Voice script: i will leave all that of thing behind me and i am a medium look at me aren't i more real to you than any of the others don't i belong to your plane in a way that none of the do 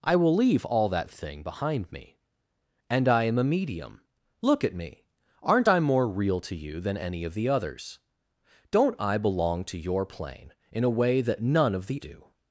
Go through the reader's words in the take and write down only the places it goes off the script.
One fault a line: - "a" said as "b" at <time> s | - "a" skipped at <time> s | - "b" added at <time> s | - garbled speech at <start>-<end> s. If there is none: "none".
none